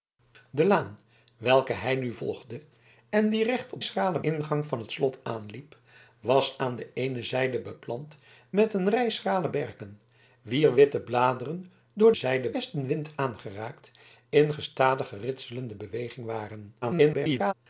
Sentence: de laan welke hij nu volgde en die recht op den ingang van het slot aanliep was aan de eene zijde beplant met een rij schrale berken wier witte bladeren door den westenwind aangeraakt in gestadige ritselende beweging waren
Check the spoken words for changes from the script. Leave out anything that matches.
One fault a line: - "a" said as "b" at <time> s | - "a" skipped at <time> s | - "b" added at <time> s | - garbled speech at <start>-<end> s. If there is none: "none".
- "den" said as "schrale" at 3.8 s
- "den" said as "zijde" at 12.1 s
- garbled speech at 16.8-17.5 s